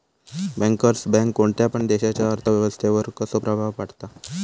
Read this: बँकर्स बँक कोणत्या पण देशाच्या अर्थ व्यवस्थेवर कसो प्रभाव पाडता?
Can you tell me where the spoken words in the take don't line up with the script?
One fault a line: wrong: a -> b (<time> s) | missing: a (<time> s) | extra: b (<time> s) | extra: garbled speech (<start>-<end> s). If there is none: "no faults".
no faults